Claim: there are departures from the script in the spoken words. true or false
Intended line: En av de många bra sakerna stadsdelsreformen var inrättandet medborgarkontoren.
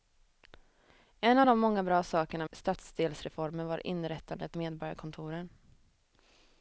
false